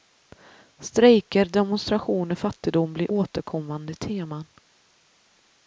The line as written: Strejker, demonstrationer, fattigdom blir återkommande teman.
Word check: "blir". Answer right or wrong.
right